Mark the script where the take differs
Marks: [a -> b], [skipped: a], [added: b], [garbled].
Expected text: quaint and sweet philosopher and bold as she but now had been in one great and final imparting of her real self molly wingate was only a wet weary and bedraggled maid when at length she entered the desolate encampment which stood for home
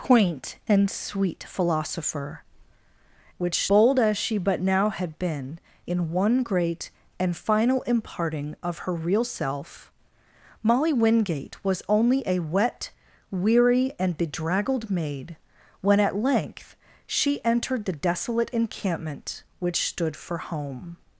quaint and sweet philosopher [and -> which] bold as she but now had been in one great and final imparting of her real self molly wingate was only a wet weary and bedraggled maid when at length she entered the desolate encampment which stood for home